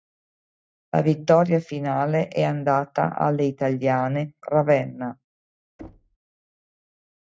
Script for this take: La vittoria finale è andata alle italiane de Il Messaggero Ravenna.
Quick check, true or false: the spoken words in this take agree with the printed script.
false